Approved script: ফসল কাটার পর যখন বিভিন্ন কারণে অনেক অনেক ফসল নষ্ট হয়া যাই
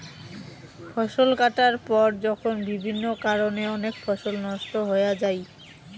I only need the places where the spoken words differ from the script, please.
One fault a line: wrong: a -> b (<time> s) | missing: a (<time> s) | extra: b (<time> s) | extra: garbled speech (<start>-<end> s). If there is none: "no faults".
missing: অনেক (3.9 s)